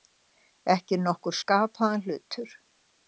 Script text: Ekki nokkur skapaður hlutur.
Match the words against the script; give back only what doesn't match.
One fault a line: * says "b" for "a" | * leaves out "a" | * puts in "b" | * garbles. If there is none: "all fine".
all fine